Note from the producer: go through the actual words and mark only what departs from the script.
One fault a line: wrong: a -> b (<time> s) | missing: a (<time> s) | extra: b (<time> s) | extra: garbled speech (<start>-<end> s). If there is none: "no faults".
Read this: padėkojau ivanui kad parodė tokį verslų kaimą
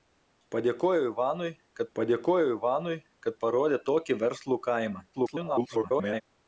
extra: padėkojau ivanui kad (2.0 s)
extra: garbled speech (5.1-6.2 s)